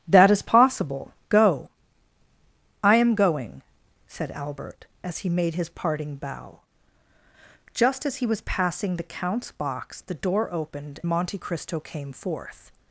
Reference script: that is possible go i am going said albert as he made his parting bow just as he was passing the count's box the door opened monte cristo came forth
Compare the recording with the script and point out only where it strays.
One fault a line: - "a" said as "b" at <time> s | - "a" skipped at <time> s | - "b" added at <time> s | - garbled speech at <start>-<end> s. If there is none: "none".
none